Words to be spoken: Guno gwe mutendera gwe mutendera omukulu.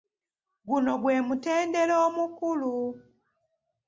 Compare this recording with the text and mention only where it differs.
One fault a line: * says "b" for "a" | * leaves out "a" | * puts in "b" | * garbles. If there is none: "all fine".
* leaves out "gwe mutendera"